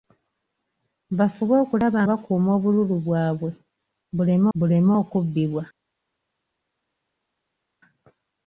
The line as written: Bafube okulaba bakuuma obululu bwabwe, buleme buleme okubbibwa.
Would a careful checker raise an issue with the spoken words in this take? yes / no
no